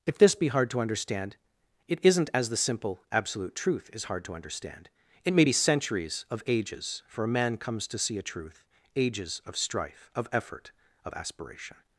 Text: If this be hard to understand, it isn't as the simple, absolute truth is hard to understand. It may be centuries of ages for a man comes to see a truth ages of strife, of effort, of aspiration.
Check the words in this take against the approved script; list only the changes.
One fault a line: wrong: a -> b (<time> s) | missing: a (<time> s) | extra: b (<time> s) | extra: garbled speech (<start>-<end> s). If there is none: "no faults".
no faults